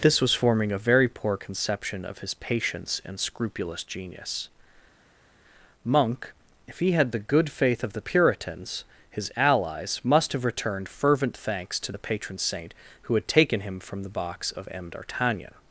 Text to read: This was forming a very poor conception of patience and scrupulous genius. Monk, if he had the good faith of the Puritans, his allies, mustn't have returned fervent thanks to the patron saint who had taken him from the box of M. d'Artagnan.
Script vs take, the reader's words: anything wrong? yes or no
yes